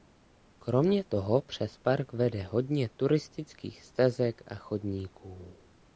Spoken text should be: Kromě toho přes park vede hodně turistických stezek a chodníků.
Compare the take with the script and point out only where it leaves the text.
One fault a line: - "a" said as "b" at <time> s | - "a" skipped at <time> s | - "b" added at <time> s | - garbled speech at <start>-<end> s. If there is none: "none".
none